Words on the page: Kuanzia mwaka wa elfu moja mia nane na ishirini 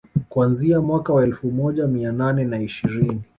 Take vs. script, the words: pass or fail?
pass